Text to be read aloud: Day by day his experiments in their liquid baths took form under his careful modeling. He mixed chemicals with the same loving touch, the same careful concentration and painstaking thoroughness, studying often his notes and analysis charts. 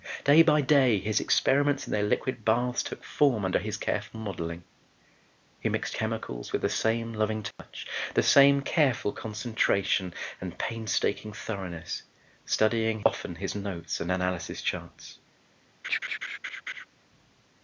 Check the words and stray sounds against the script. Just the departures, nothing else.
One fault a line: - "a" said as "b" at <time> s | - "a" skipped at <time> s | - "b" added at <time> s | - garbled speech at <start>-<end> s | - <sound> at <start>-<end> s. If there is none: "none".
- dropout at 7.5-7.6 s
- laugh at 15.8-16.9 s